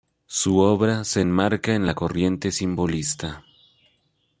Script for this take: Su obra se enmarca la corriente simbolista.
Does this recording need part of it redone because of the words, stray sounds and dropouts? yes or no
yes